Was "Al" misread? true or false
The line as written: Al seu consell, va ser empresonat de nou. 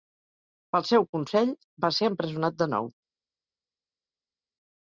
true